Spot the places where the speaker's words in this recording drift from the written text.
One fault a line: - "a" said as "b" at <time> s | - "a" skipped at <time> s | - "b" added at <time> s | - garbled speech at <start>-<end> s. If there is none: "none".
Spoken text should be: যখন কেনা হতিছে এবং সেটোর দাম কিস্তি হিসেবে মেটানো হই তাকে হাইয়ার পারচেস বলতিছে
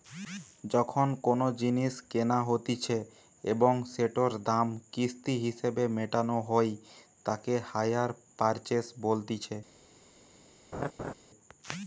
- "কোনো জিনিস" added at 1.2 s